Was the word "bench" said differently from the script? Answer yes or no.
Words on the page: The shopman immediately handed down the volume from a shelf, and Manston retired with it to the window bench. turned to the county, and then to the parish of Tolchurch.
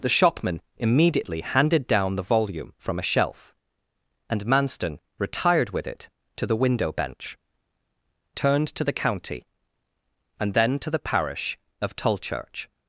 no